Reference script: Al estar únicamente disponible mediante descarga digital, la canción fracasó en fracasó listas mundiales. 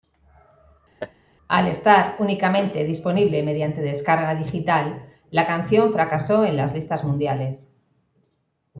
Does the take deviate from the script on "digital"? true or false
false